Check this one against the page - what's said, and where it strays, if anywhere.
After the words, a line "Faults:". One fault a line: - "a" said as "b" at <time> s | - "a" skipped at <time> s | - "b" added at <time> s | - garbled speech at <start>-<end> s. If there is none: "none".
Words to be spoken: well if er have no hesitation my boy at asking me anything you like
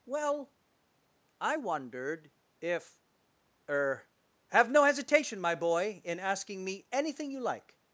well i wondered if er have no hesitation my boy in asking me anything you like
Faults:
- "i wondered" added at 1.4 s
- "at" said as "in" at 6.1 s